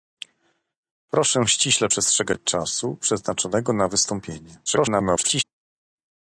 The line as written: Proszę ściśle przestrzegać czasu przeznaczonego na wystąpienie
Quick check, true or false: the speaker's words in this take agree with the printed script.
false